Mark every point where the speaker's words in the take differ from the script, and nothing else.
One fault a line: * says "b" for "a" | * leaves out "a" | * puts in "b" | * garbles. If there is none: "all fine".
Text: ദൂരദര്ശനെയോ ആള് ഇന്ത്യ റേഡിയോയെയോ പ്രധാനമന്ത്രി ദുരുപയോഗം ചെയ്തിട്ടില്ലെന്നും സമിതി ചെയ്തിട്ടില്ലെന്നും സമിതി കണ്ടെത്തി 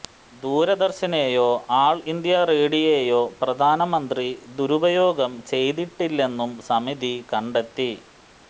* leaves out "ചെയ്തിട്ടില്ലെന്നും സമിതി"